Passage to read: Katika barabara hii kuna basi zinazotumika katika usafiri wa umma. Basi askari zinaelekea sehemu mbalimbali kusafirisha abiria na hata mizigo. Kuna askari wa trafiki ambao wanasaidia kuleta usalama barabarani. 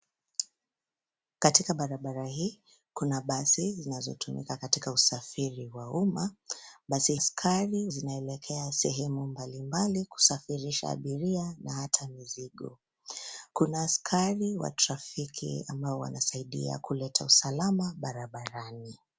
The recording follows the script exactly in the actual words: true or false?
true